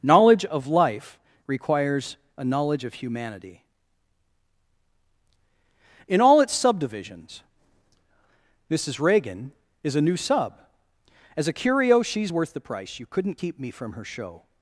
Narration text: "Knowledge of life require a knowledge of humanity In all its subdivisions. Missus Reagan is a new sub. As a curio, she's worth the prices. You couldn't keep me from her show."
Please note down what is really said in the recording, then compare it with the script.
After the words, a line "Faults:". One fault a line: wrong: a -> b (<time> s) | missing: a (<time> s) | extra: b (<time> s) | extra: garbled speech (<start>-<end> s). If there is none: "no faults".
"Knowledge of life requires a knowledge of humanity In all its subdivisions. Missus Reagan is a new sub. As a curio, she's worth the price. You couldn't keep me from her show."
Faults:
wrong: require -> requires (1.4 s)
wrong: prices -> price (12.6 s)